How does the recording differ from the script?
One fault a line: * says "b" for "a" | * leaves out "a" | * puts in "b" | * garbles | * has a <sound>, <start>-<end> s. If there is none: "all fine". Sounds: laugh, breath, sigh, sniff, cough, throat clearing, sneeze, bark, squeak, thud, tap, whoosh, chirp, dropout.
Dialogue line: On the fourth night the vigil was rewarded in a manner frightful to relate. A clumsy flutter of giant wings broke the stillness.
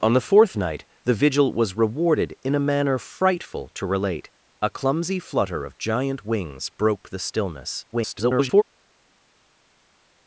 * garbles